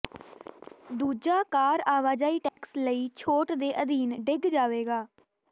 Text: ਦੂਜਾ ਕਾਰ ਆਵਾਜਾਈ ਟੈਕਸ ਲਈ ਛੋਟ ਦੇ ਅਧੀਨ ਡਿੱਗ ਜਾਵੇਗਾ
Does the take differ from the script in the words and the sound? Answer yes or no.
yes